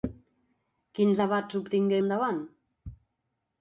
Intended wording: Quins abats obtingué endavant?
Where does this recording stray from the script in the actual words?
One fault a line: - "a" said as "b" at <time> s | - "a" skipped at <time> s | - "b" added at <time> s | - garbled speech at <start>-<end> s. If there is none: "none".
none